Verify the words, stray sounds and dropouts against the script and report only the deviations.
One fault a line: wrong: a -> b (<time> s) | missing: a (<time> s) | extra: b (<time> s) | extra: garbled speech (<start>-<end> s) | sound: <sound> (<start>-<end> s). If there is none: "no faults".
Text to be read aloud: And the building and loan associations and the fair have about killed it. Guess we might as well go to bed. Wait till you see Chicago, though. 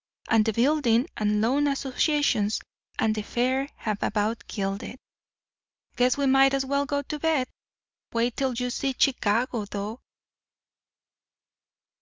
no faults